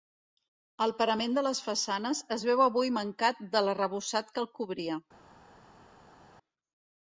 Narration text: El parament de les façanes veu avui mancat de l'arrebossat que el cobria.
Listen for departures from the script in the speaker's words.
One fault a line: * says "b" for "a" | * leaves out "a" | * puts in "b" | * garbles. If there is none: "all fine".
* puts in "es"